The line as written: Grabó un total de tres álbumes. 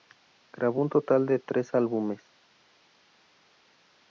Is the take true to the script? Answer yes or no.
yes